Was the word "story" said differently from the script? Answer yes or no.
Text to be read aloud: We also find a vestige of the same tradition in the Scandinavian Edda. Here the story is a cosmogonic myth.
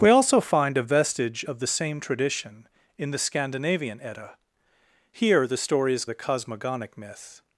no